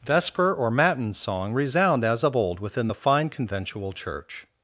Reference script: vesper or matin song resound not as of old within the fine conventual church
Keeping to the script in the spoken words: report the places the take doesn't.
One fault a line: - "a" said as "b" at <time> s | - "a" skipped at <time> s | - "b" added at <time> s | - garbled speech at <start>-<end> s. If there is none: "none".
- "not" skipped at 2.0 s